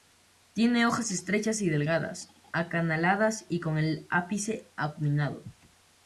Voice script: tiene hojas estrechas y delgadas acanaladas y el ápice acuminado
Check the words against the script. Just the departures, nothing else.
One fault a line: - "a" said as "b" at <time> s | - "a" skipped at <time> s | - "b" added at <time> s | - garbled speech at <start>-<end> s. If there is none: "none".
- "con" added at 3.6 s